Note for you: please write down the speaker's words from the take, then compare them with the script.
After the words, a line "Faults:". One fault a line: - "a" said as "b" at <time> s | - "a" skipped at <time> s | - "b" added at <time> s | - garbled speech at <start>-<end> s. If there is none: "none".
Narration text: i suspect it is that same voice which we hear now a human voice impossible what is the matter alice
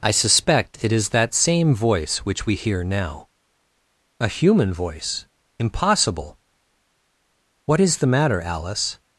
i suspect it is that same voice which we hear now a human voice impossible what is the matter alice
Faults:
none